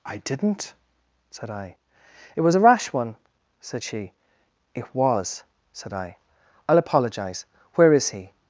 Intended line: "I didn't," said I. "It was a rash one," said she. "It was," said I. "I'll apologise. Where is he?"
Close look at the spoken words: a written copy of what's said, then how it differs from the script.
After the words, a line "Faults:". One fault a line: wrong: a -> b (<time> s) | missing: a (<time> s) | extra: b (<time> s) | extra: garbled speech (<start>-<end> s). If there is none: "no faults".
"I didn't," said I. "It was a rash one," said she. "It was," said I. "I'll apologise. Where is he?"
Faults:
no faults